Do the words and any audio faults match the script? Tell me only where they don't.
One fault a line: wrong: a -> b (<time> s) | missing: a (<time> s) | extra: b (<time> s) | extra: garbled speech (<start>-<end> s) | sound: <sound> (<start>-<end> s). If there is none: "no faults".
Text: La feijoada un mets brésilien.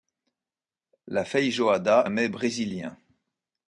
no faults